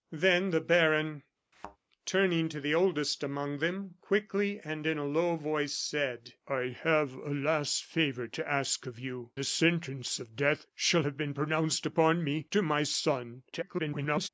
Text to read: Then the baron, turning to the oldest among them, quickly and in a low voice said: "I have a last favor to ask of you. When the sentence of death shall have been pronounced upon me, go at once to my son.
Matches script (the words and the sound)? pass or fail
fail